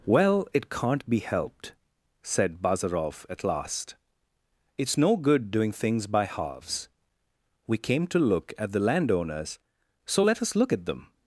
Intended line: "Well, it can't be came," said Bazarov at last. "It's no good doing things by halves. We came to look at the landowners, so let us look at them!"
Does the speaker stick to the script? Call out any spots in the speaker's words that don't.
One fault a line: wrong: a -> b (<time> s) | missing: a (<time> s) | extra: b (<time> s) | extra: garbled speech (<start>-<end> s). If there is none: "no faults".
wrong: came -> helped (1.2 s)